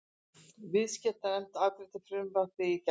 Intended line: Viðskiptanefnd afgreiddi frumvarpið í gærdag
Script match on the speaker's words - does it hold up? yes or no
yes